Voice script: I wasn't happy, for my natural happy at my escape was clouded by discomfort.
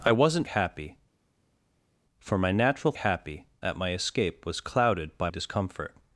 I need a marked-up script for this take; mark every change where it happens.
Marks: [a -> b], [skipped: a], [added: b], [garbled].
I wasn't happy, for my natural happy at my escape was clouded by discomfort.